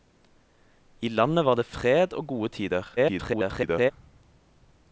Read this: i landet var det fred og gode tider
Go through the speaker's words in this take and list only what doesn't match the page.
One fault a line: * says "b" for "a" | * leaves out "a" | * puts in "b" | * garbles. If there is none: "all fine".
* garbles